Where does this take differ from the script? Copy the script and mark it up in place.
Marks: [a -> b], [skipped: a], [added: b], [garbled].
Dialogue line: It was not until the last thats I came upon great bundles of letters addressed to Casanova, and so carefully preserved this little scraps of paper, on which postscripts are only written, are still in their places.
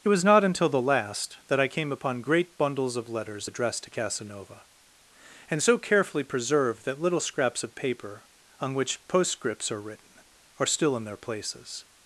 It was not until the last [thats -> that] I came upon great bundles of letters addressed to Casanova, and so carefully preserved [this -> that] little scraps of paper, on which postscripts are [skipped: only] written, are still in their places.